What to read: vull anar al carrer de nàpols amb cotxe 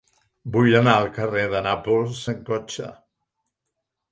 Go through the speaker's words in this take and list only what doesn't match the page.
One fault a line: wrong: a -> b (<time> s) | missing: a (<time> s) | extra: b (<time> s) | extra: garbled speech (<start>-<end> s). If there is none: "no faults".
no faults